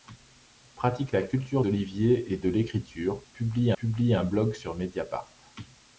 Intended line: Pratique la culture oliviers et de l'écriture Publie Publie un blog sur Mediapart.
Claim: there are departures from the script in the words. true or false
false